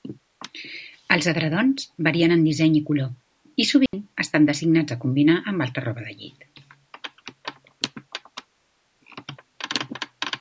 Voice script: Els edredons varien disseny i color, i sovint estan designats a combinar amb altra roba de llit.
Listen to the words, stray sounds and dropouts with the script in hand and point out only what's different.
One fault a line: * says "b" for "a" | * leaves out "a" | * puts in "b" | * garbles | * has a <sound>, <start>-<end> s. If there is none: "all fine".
* puts in "en"
* has a dropout, 3.9-3.9 s